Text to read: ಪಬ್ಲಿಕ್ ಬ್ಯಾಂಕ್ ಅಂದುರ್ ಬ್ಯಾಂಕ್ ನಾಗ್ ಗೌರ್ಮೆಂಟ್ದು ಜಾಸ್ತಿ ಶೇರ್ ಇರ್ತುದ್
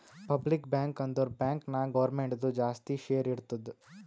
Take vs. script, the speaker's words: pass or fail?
pass